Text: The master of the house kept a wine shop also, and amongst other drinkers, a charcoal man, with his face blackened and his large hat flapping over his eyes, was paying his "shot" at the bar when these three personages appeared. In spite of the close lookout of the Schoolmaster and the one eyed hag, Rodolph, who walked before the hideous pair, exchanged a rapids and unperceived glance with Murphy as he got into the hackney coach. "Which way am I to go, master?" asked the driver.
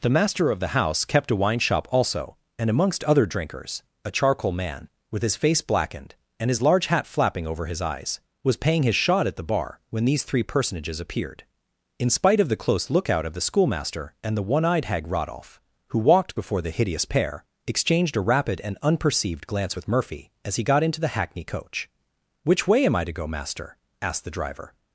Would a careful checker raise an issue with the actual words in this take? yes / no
yes